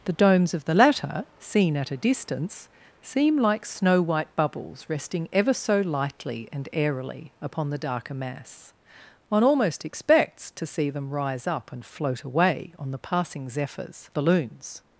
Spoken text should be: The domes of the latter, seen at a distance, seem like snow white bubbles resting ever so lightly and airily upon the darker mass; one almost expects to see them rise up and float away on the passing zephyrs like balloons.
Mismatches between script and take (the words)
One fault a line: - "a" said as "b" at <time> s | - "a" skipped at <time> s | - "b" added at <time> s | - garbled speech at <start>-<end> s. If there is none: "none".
- "like" skipped at 14.1 s